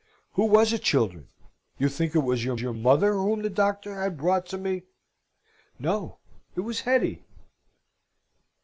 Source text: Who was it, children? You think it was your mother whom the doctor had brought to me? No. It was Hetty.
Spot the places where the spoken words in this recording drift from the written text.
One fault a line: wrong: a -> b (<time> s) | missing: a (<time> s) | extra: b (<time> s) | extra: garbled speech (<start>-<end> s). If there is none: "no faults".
extra: your (2.6 s)